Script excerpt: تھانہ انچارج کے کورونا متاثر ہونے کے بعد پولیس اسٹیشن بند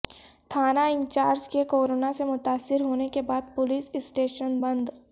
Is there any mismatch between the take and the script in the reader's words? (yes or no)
yes